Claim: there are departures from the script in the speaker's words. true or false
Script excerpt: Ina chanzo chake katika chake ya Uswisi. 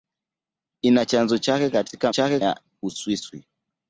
false